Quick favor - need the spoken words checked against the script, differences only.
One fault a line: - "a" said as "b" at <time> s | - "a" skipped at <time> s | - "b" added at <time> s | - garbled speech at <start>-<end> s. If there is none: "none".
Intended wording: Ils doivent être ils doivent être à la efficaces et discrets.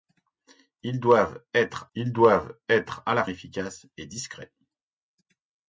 none